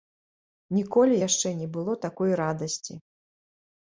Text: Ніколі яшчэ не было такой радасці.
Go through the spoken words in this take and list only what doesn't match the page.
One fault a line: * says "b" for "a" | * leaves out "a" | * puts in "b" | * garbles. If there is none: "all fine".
all fine